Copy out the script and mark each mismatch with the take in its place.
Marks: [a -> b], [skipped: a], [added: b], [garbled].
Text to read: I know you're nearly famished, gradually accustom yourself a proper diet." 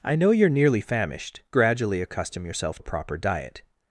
I know you're nearly famished, gradually accustom yourself a proper diet."